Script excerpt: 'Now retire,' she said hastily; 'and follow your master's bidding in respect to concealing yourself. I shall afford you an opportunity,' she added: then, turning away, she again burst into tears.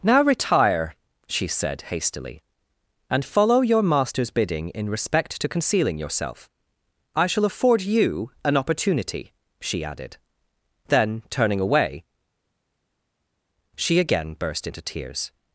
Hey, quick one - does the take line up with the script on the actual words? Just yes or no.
yes